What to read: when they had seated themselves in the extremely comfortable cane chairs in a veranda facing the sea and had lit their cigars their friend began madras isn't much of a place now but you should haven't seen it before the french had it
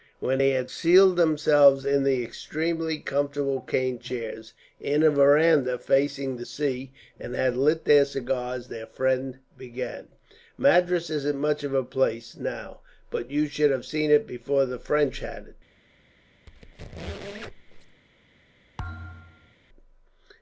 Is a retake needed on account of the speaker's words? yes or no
yes